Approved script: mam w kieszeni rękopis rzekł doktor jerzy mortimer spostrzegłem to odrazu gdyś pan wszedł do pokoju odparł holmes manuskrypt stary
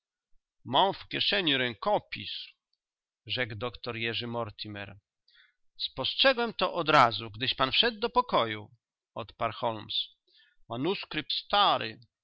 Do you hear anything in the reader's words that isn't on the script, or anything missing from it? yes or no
no